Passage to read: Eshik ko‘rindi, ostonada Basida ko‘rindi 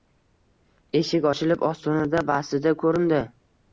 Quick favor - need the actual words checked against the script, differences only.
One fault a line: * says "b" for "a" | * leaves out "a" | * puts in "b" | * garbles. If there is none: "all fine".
* says "ochilib" for "ko‘rindi"